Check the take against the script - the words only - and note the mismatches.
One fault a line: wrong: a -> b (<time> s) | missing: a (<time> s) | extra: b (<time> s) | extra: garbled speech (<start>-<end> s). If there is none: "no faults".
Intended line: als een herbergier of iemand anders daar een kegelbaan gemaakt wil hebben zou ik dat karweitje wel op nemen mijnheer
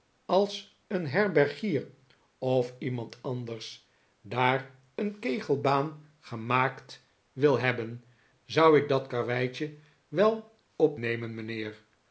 no faults